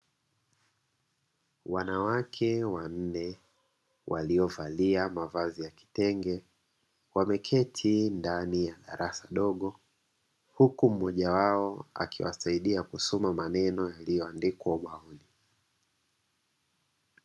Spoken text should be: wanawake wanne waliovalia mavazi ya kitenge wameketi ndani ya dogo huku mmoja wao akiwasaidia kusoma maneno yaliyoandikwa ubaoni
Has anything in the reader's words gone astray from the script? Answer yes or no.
yes